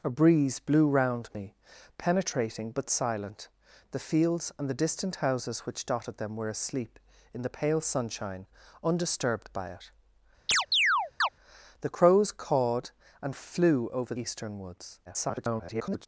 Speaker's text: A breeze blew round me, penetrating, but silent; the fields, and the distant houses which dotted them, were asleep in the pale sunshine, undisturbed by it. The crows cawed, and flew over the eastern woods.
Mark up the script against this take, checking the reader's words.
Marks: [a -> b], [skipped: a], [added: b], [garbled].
A breeze blew round me, penetrating, but silent; the fields, and the distant houses which dotted them, were asleep in the pale sunshine, undisturbed by it. The crows cawed, and flew over [skipped: the] eastern woods. [garbled]